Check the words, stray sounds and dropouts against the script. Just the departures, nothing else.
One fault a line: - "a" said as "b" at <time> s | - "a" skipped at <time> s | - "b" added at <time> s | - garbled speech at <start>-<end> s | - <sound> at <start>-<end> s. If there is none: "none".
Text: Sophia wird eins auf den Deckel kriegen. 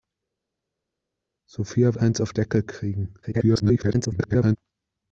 - "wird" skipped at 2.0 s
- "den" skipped at 2.3 s
- garbled speech at 3.2-4.6 s